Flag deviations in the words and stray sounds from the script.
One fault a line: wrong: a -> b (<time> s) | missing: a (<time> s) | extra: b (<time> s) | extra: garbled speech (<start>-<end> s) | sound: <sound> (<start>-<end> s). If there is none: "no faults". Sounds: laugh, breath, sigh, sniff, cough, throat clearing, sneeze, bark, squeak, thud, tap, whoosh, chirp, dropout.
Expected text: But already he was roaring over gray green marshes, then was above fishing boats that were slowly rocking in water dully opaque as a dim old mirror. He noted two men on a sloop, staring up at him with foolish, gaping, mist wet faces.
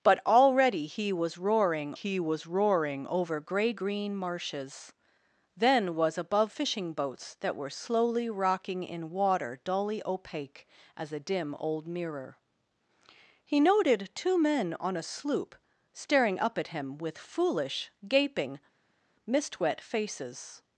extra: he was roaring (1.9 s)